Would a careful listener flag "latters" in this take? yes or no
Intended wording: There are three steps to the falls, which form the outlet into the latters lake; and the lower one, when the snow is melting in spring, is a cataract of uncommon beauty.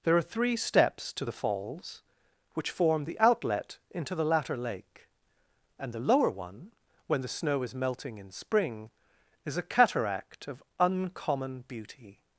yes